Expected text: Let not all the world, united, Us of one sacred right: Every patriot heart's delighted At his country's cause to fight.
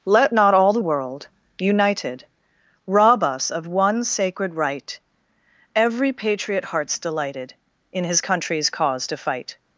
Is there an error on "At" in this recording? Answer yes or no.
yes